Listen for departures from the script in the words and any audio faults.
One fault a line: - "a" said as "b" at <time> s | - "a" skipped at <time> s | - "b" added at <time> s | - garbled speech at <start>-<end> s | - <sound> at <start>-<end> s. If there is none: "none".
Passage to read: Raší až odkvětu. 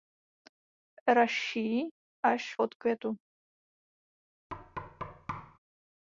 - thud at 4.5-5.6 s